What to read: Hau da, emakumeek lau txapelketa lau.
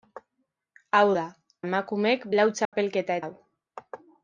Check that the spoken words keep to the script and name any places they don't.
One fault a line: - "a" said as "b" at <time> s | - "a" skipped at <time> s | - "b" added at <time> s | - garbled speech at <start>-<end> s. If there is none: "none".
none